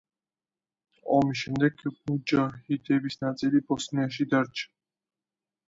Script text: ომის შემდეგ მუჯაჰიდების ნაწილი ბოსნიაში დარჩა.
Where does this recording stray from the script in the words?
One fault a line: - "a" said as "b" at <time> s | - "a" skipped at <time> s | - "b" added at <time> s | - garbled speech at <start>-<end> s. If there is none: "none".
none